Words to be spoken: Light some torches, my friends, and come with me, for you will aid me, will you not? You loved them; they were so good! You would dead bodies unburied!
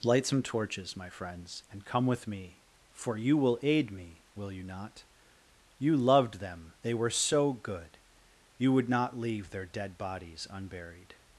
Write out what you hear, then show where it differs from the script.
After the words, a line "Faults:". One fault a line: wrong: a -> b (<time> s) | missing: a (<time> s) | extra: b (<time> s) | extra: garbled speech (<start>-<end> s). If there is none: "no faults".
Light some torches, my friends, and come with me, for you will aid me, will you not? You loved them; they were so good! You would not leave their dead bodies unburied!
Faults:
extra: not leave their (8.9 s)